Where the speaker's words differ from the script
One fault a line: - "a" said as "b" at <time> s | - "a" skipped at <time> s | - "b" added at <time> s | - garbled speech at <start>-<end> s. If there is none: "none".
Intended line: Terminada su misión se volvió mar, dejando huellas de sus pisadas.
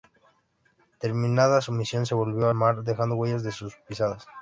none